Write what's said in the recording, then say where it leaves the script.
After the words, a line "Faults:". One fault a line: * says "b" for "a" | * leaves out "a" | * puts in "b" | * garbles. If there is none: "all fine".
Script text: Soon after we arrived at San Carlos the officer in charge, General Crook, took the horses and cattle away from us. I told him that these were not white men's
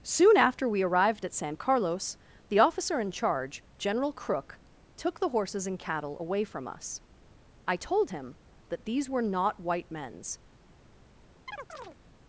Soon after we arrived at San Carlos the officer in charge, General Crook, took the horses and cattle away from us. I told him that these were not white men's
Faults:
all fine